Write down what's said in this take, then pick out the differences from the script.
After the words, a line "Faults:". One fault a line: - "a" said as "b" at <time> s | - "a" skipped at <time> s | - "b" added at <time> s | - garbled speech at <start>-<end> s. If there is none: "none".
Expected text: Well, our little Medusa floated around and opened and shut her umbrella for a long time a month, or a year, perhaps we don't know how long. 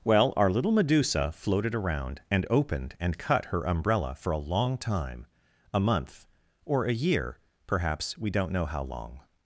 Well, our little Medusa floated around and opened and cut her umbrella for a long time a month, or a year, perhaps we don't know how long.
Faults:
- "shut" said as "cut" at 3.2 s